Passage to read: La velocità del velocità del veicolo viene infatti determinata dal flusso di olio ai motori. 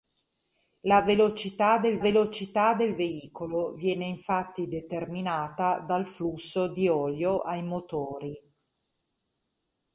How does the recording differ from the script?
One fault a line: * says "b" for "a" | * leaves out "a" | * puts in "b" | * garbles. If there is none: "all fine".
all fine